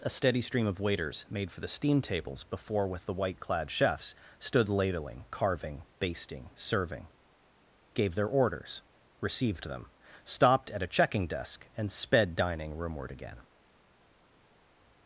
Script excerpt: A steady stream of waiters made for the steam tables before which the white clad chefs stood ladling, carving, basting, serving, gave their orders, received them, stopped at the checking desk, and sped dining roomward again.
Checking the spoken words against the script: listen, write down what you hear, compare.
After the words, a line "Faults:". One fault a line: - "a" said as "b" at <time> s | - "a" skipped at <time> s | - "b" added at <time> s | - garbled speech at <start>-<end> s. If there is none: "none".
A steady stream of waiters made for the steam tables before with the white clad chefs stood ladling, carving, basting, serving, gave their orders, received them, stopped at a checking desk, and sped dining roomward again.
Faults:
- "which" said as "with" at 2.9 s
- "the" said as "a" at 10.8 s